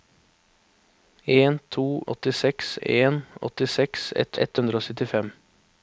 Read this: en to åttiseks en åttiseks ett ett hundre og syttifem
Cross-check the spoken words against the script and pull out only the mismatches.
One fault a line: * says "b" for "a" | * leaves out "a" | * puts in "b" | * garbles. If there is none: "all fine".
all fine